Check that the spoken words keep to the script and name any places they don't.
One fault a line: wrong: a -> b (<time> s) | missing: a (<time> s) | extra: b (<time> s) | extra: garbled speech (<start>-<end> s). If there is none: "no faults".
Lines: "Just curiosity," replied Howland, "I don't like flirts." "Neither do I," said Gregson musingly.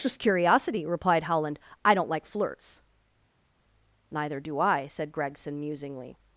no faults